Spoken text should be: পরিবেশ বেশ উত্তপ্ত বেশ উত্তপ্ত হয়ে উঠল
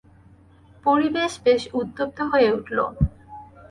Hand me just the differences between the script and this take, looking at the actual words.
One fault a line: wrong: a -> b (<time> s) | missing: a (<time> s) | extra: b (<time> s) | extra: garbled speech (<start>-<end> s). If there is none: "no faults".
missing: বেশ উত্তপ্ত (2.2 s)